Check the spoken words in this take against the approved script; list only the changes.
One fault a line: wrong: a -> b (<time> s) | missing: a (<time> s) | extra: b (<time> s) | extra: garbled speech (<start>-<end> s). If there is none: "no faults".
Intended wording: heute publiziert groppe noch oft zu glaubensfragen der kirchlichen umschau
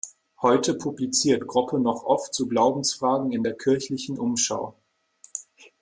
extra: in (3.3 s)